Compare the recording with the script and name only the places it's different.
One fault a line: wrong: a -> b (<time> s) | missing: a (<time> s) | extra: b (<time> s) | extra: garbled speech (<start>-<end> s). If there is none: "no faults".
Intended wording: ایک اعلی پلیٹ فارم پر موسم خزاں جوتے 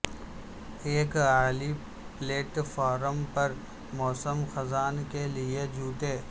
extra: کے لئے (5.1 s)